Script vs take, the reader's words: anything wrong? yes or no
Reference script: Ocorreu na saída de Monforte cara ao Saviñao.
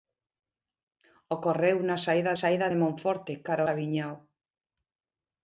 yes